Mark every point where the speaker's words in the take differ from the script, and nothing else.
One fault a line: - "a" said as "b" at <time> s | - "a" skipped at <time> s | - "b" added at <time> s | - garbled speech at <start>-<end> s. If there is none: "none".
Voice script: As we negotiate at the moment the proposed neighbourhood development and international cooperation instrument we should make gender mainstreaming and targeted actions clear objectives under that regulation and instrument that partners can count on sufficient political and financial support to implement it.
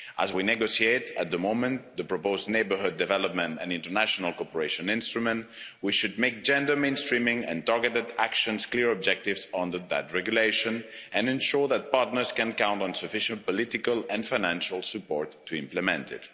- "instrument" said as "ensure" at 11.3 s